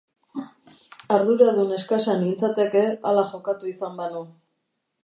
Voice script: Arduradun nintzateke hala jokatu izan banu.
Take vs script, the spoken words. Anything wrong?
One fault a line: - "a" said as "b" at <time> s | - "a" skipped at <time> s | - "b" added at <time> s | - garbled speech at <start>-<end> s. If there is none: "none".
- "eskasa" added at 1.8 s